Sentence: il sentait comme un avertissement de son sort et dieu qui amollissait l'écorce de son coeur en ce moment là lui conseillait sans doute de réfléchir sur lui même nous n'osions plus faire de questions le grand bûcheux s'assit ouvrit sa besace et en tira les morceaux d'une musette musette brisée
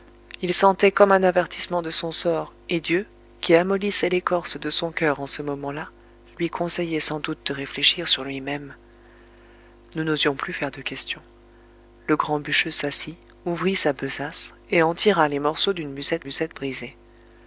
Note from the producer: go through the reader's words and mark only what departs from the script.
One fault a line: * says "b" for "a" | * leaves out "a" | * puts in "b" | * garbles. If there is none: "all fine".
all fine